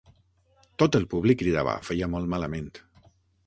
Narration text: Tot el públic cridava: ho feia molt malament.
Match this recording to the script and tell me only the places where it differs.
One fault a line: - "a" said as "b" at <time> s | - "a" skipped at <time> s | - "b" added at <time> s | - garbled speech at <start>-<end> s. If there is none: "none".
none